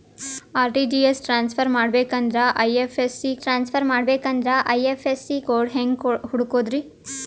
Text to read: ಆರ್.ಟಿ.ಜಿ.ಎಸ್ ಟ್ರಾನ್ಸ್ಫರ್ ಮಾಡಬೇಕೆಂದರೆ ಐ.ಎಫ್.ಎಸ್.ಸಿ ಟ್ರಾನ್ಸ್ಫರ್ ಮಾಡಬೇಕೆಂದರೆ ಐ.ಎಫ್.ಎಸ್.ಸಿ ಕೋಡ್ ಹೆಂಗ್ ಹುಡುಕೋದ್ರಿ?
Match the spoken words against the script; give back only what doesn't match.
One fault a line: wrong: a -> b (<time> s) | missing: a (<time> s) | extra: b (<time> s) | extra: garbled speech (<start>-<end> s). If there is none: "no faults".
no faults